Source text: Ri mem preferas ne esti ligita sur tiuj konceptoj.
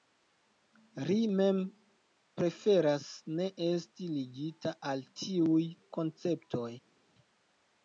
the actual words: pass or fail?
fail